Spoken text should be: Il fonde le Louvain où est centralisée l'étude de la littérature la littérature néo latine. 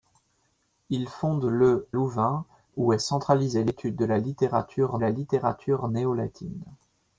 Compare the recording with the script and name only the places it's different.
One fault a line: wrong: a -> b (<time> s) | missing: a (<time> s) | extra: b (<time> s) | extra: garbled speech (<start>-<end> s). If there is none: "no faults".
no faults